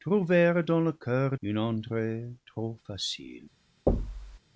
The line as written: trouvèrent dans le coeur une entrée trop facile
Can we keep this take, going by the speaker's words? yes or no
yes